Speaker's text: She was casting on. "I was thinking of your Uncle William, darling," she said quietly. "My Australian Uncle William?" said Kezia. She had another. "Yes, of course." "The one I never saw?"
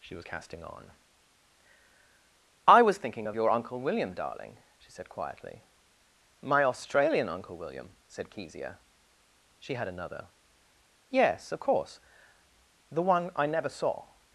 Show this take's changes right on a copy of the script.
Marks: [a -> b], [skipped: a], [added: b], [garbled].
She was casting on. "I was thinking of your Uncle William, darling," she said quietly. "My Australian Uncle William?" said Kezia. She had another. "Yes, of course." "The one I never saw?"